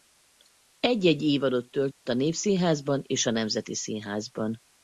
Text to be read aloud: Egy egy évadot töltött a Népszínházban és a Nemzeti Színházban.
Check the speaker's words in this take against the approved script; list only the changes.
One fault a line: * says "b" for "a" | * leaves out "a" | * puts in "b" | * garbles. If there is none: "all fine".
all fine